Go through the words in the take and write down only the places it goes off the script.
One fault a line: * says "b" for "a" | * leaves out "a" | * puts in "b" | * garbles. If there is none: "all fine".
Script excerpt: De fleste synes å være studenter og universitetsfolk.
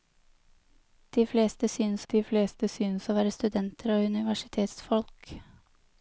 * puts in "de fleste synes"